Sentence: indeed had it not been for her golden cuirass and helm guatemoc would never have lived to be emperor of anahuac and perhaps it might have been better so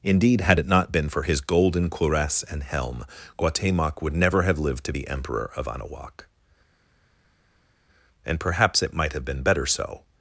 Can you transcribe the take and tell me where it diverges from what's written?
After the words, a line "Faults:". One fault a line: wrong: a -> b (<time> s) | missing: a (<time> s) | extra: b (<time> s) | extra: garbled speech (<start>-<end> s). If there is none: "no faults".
indeed had it not been for his golden cuirass and helm guatemoc would never have lived to be emperor of anahuac and perhaps it might have been better so
Faults:
wrong: her -> his (1.2 s)